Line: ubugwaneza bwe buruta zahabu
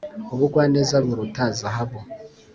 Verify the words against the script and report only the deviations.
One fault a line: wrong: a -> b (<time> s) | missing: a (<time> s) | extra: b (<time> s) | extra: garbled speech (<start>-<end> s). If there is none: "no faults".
missing: bwe (0.9 s)